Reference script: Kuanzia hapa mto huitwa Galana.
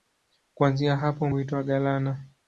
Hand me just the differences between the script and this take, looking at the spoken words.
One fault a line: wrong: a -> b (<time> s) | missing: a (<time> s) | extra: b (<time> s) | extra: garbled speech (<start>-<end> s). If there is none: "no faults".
missing: mto (1.3 s)